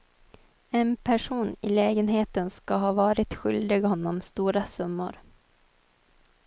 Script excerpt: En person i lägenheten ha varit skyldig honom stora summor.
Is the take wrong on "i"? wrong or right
right